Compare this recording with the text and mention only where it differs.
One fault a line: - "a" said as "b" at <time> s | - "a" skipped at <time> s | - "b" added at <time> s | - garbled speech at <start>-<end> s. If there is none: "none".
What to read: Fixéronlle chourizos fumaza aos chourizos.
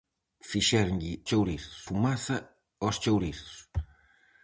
none